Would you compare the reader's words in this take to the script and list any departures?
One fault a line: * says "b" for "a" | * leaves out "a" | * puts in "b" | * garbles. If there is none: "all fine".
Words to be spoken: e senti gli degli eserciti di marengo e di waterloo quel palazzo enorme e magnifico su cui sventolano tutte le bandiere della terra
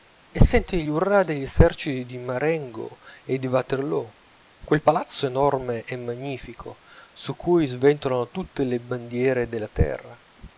* puts in "urrà"